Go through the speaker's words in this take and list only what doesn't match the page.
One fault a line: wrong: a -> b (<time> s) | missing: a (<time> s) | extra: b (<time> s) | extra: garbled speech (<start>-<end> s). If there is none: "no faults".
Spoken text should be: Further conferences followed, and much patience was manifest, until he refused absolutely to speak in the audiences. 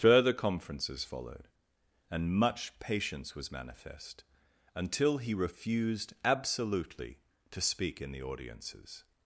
no faults